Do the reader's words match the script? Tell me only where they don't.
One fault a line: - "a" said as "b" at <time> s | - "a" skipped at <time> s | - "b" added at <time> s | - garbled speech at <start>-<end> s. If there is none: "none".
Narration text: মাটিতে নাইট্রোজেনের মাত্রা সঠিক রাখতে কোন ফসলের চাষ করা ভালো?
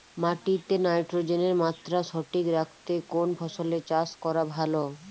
none